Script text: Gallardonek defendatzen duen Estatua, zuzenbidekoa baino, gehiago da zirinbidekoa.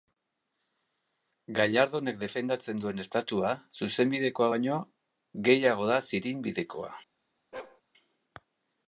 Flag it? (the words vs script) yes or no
no